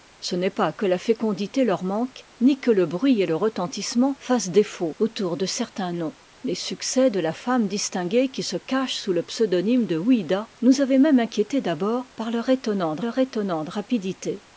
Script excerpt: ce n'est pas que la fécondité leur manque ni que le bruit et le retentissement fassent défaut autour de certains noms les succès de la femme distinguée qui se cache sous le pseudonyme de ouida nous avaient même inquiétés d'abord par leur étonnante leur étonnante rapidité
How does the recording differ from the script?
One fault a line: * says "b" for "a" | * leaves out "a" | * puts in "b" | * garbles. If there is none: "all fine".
all fine